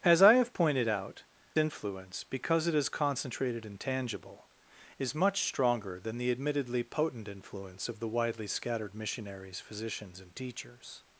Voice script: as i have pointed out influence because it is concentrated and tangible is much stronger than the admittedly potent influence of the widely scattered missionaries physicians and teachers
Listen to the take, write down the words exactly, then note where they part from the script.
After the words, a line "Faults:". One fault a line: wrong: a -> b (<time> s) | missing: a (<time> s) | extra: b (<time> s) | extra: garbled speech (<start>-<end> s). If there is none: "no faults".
as i have pointed out influence because it is concentrated and tangible is much stronger than the admittedly potent influence of the widely scattered missionaries physicians and teachers
Faults:
no faults